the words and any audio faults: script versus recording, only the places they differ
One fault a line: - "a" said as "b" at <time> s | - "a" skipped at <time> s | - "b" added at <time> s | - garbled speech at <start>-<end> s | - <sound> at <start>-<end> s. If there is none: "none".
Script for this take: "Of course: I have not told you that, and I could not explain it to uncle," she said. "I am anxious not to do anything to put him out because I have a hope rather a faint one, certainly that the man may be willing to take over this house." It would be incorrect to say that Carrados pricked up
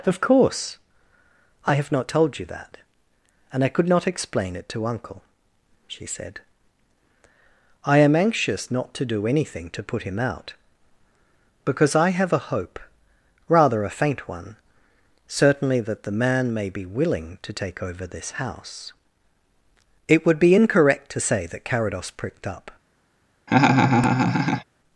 - laugh at 23.5-24.6 s